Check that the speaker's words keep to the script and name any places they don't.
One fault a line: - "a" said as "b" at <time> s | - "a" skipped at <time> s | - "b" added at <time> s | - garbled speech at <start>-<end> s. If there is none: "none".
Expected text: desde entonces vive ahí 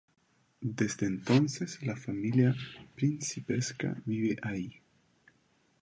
- "la familia principesca" added at 1.8 s